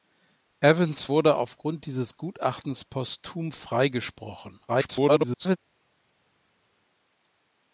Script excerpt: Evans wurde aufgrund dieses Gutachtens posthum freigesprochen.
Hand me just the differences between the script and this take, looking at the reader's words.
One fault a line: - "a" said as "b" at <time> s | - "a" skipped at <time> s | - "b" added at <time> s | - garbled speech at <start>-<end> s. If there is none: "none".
- garbled speech at 4.7-5.6 s